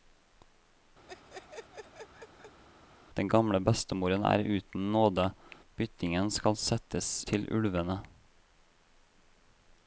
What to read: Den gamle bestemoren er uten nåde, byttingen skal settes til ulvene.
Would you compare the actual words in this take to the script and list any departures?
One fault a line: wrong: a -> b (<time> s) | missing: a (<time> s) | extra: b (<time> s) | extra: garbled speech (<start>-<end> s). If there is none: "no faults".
no faults